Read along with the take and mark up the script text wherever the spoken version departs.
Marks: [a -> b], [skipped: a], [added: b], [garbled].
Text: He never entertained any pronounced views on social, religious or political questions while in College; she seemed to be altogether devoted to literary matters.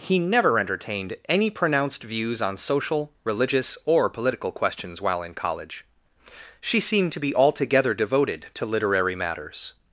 He never entertained any pronounced views on social, religious or political questions while in College; she seemed to be altogether devoted to literary matters.